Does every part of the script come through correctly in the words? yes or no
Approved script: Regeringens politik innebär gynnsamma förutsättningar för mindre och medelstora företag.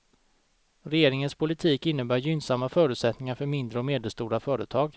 yes